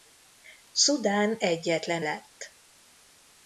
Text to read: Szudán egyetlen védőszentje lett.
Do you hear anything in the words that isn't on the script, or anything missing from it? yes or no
yes